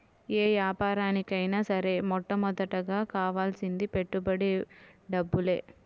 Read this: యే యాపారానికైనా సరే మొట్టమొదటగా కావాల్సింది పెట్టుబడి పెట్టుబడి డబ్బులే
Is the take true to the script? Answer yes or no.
no